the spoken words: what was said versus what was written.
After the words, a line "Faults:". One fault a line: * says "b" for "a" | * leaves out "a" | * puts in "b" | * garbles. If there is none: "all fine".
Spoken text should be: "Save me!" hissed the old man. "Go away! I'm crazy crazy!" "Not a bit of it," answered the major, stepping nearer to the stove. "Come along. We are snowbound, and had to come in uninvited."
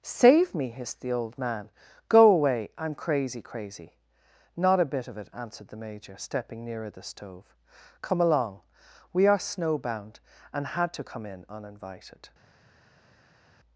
"Save me!" hissed the old man. "Go away! I'm crazy crazy!" "Not a bit of it," answered the major, stepping nearer the stove. "Come along. We are snowbound, and had to come in uninvited."
Faults:
* leaves out "to"